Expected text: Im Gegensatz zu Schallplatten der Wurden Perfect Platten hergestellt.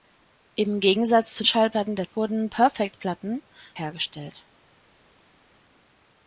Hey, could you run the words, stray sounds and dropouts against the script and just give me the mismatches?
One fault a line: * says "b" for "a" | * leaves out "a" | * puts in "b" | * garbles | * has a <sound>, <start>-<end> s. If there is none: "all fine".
all fine